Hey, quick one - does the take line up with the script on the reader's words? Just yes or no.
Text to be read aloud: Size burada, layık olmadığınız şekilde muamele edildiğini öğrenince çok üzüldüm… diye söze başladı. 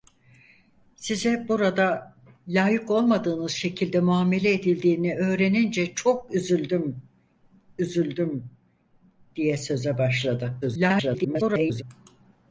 no